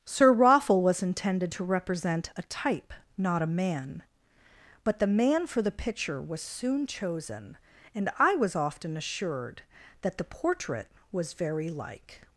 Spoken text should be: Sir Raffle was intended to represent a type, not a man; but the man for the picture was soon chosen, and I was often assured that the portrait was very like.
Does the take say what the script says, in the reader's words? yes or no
yes